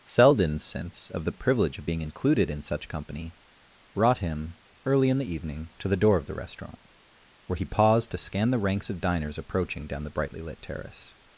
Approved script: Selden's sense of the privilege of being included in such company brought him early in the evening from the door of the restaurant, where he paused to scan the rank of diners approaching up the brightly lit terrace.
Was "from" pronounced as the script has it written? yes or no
no